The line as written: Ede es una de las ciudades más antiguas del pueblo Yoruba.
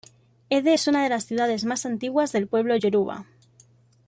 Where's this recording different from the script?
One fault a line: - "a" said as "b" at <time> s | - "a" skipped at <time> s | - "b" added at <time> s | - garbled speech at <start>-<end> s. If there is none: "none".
none